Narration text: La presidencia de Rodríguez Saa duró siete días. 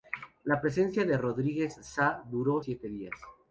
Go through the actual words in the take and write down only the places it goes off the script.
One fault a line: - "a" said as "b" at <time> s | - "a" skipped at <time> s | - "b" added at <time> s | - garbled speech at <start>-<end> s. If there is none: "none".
none